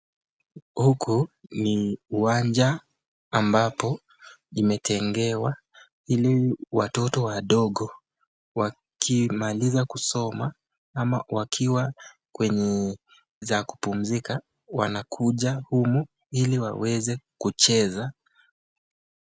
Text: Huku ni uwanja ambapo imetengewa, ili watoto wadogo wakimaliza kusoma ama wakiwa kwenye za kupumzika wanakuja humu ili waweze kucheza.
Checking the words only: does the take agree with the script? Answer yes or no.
yes